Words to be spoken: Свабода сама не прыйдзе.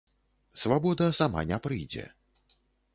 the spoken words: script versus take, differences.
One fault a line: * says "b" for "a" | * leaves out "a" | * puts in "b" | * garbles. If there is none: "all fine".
all fine